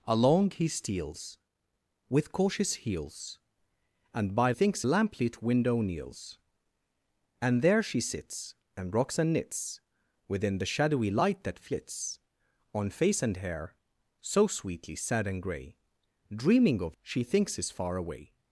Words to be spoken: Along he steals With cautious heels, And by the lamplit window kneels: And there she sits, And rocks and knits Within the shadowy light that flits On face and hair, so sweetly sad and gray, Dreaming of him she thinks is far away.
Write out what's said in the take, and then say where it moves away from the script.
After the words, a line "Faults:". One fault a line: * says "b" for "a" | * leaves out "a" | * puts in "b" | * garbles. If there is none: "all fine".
Along he steals With cautious heels, And by thinks lamplit window kneels: And there she sits, And rocks and knits Within the shadowy light that flits On face and hair, so sweetly sad and gray, Dreaming of she thinks is far away.
Faults:
* says "thinks" for "the"
* leaves out "him"